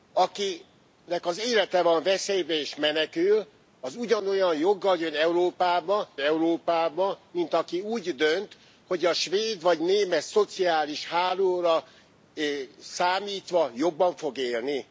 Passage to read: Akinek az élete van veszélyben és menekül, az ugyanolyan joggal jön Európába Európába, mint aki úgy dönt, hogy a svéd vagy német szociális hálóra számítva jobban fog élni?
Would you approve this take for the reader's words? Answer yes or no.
yes